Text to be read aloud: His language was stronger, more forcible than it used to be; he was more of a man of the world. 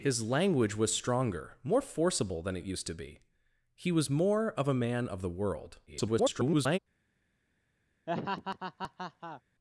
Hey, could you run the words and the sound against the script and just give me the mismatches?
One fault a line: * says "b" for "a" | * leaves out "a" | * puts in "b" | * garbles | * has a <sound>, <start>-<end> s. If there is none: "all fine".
* garbles
* has a laugh, 8.1-9.4 s